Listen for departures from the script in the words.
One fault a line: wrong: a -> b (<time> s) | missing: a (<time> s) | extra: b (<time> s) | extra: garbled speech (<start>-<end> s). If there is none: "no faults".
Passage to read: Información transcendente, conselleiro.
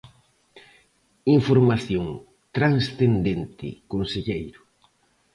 no faults